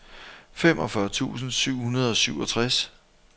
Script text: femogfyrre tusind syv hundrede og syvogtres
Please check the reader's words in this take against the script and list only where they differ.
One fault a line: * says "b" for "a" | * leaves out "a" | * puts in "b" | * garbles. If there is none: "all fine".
all fine